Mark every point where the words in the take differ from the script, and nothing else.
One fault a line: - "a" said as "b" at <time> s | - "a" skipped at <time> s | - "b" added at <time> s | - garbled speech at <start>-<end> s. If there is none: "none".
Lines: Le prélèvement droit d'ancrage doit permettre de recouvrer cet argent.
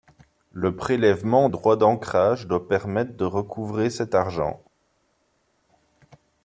none